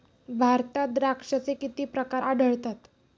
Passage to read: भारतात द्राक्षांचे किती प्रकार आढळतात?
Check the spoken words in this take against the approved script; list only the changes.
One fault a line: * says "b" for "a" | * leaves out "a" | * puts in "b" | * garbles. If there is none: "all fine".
all fine